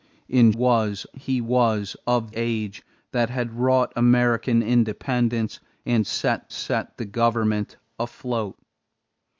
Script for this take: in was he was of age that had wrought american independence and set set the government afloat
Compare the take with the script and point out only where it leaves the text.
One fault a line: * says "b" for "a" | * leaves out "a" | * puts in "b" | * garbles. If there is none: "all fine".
all fine